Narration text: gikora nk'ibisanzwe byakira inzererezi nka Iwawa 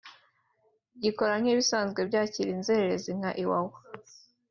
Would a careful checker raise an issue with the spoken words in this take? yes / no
no